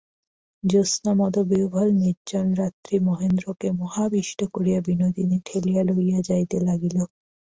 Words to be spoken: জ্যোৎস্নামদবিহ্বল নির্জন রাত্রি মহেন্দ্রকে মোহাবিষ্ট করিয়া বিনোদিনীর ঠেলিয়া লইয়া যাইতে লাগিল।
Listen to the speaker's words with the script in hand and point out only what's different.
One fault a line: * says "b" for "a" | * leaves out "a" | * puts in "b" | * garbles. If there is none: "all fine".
all fine